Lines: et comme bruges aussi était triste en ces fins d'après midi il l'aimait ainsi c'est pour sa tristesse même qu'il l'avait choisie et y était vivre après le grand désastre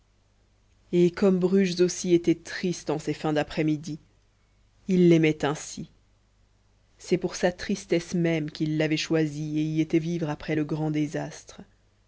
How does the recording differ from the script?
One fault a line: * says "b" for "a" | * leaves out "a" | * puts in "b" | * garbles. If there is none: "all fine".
all fine